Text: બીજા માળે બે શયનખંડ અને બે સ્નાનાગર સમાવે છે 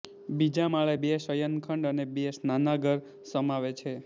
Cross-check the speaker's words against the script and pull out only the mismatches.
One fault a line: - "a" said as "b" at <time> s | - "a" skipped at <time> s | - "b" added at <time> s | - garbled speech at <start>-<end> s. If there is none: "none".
none